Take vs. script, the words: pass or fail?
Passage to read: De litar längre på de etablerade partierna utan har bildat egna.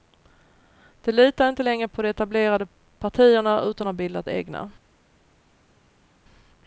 fail